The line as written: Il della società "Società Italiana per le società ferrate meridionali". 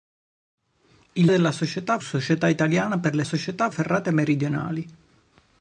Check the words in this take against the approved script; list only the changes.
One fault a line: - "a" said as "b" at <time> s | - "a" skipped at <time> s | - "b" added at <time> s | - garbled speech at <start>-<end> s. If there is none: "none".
none